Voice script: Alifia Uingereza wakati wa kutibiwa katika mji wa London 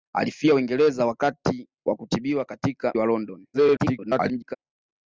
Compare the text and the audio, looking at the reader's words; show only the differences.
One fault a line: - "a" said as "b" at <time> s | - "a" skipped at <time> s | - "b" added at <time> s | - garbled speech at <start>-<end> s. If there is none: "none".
- "mji" skipped at 2.9 s
- garbled speech at 3.5-4.6 s